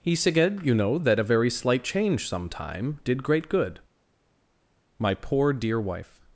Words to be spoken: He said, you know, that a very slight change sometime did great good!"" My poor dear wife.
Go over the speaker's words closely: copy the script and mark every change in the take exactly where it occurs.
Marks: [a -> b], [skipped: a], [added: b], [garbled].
He said, you know, that a very slight change sometime did great good!"" My poor dear wife.